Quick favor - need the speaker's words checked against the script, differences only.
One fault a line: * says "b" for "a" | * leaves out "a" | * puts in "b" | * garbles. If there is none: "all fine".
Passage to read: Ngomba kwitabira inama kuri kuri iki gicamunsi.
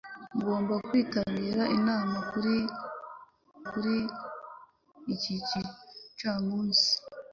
all fine